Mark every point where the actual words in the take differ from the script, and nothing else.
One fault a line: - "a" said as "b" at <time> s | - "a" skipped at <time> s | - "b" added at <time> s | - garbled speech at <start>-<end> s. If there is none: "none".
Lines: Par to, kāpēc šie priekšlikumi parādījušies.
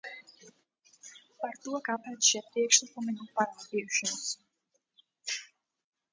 - "nav" added at 3.2 s